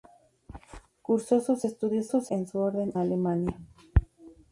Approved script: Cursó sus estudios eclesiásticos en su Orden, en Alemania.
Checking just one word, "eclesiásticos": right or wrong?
wrong